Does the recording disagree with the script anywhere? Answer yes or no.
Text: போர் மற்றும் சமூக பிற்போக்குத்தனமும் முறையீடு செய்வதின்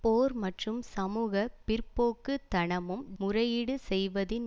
no